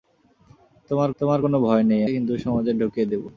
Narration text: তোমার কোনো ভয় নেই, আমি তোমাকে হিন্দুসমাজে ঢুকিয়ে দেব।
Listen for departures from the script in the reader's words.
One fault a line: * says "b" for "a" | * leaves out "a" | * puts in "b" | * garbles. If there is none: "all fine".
* puts in "তোমার"
* leaves out "আমি তোমাকে"